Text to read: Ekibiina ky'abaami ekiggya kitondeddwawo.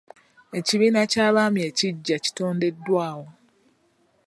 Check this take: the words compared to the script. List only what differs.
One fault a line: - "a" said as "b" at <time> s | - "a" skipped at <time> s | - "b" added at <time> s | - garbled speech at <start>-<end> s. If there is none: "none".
none